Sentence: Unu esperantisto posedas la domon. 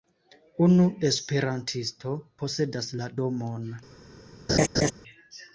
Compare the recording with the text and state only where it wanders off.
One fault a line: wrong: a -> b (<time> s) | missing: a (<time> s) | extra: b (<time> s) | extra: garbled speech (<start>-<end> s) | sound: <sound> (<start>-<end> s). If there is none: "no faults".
sound: laugh (4.5-4.9 s)